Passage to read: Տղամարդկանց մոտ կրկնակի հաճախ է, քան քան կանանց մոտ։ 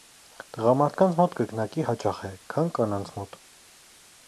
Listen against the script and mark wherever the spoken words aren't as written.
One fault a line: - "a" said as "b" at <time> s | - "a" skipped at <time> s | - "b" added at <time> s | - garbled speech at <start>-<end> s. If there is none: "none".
- "քան" skipped at 2.7 s